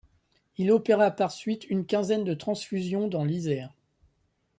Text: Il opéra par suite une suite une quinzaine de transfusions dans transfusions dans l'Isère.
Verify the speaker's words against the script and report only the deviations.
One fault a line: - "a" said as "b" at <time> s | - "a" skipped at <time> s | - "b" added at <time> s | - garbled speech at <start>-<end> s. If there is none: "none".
- "suite une" skipped at 1.9 s
- "transfusions dans" skipped at 3.2 s